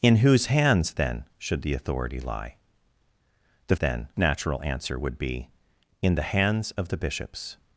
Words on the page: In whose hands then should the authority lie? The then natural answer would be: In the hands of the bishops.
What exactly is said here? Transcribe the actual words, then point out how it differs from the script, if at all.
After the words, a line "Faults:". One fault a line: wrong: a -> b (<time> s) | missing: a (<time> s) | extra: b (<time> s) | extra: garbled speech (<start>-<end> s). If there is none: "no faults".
In whose hands then should the authority lie? The then natural answer would be: In the hands of the bishops.
Faults:
no faults